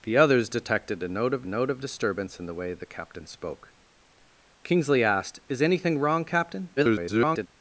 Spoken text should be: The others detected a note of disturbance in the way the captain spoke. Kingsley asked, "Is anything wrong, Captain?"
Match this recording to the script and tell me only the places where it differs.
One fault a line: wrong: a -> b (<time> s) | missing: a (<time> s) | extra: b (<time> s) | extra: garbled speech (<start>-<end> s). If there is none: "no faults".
extra: note of (1.5 s)
extra: garbled speech (6.8-7.5 s)